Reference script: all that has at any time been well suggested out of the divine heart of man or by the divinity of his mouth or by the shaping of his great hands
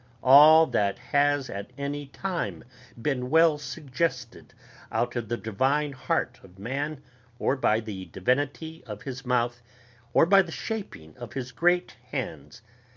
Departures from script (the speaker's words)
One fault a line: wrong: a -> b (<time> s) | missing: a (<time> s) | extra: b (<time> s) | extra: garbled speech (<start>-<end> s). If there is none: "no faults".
no faults